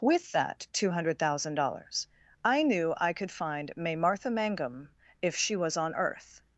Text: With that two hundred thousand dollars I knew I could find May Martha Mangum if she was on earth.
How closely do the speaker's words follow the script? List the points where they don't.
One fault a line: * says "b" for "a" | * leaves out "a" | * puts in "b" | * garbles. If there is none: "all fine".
all fine